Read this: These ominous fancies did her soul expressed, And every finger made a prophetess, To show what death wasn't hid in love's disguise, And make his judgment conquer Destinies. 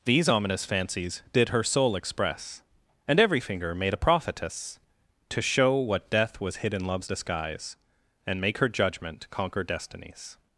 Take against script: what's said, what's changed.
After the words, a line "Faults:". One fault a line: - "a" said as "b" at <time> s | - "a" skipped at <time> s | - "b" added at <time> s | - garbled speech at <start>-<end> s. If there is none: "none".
These ominous fancies did her soul express, And every finger made a prophetess, To show what death was hid in love's disguise, And make her judgment conquer Destinies.
Faults:
- "expressed" said as "express" at 1.9 s
- "wasn't" said as "was" at 6.4 s
- "his" said as "her" at 8.6 s